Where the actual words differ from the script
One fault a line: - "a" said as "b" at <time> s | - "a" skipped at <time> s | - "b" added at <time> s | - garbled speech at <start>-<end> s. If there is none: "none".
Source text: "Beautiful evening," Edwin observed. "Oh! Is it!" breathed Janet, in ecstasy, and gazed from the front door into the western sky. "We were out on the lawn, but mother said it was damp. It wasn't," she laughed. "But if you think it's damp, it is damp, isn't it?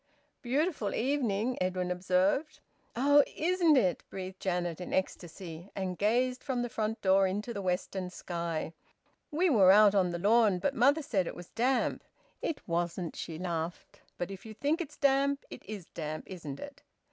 - "Is" said as "Isn't" at 3.3 s